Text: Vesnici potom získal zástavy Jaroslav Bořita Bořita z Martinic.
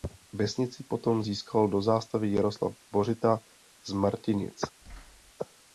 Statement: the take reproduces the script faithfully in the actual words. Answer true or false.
false